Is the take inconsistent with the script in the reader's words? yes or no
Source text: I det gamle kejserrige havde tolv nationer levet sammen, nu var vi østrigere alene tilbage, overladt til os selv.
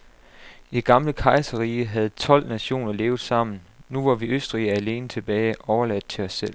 no